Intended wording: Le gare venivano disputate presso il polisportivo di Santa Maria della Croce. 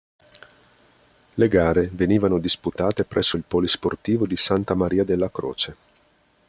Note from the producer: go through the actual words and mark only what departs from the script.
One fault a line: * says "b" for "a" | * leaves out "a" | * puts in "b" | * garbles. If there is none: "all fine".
all fine